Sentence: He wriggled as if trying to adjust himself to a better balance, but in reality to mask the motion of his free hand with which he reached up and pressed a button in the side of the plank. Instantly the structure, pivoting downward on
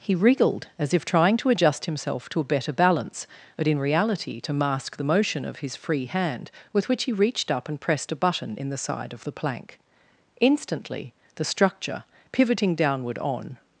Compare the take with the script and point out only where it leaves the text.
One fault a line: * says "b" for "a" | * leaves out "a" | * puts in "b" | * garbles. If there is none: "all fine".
all fine